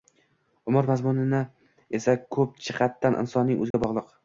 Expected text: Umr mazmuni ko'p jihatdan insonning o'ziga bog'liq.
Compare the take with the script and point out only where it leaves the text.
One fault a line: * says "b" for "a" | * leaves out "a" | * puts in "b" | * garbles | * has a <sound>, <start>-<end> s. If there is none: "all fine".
* puts in "esa"
* has a dropout, 3.7-3.7 s